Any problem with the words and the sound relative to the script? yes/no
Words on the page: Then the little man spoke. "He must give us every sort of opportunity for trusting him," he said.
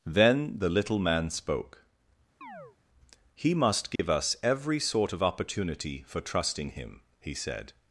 yes